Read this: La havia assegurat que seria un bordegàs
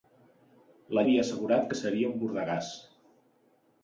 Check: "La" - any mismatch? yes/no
no